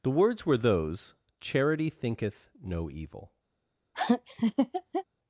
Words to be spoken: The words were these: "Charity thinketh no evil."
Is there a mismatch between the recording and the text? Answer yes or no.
yes